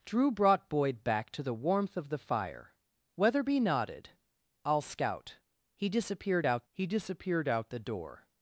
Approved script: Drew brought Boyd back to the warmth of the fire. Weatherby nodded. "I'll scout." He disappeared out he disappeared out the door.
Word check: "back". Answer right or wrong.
right